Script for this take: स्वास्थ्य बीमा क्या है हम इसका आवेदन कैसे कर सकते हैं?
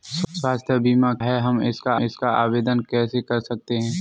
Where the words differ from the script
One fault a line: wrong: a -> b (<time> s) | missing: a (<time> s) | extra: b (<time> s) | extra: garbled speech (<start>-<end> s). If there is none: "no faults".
missing: क्या (1.1 s)
extra: इसका (2.0 s)